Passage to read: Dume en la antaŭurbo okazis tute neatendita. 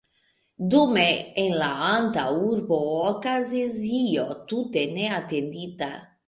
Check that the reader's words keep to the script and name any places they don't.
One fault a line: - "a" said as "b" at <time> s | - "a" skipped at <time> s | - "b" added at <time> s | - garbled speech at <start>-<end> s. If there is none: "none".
- "io" added at 4.0 s